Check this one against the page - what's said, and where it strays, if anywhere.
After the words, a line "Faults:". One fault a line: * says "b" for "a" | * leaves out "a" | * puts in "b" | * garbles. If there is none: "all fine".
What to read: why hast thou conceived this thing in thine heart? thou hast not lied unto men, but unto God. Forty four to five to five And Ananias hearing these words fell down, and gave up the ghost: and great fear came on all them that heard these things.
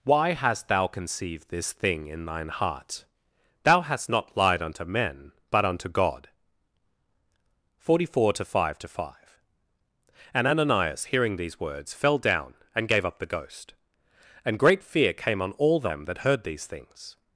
why hast thou conceived this thing in thine heart? thou hast not lied unto men, but unto God. Forty four to five to five And Ananias hearing these words fell down, and gave up the ghost: and great fear came on all them that heard these things.
Faults:
all fine